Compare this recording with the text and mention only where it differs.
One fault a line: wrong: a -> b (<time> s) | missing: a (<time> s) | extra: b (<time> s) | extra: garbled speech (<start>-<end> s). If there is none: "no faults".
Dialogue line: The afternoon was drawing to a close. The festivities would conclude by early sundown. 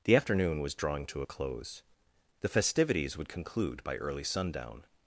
no faults